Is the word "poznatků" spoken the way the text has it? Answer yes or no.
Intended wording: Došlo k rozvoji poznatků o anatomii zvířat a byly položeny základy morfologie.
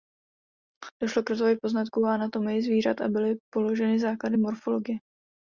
yes